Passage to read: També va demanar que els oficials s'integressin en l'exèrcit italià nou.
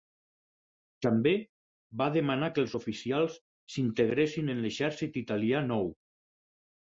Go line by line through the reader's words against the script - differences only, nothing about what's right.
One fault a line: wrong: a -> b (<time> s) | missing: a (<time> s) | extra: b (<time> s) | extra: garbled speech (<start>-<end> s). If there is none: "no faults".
no faults